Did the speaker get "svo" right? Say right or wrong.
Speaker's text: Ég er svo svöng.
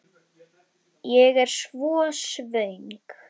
right